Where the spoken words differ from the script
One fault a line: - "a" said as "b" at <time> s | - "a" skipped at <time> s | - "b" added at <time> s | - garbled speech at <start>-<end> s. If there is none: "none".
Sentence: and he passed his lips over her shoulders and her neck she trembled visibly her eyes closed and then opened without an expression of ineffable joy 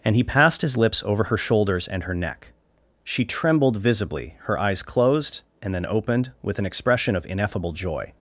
- "without" said as "with" at 6.4 s